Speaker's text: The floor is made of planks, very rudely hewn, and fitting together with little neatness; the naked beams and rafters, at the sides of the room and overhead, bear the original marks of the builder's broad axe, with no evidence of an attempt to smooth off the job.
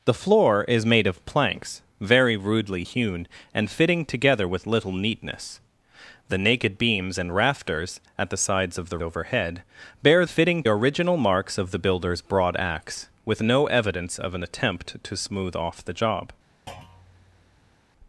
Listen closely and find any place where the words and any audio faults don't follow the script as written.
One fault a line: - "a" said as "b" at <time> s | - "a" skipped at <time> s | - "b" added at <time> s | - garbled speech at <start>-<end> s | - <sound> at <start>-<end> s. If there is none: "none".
- "room and" skipped at 9.0 s
- "the" said as "fitting" at 10.3 s
- thud at 16.7-17.8 s